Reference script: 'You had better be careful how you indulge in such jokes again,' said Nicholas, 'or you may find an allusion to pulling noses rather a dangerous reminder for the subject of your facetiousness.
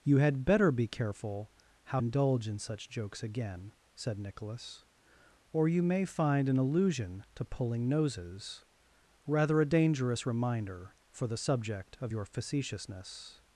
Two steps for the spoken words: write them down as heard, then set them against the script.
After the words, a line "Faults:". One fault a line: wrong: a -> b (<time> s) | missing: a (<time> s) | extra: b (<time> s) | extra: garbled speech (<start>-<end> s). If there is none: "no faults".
'You had better be careful how indulge in such jokes again,' said Nicholas, 'or you may find an allusion to pulling noses rather a dangerous reminder for the subject of your facetiousness.
Faults:
missing: you (2.0 s)